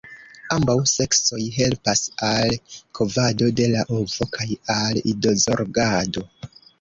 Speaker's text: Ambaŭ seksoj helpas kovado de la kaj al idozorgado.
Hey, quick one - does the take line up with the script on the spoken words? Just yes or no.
no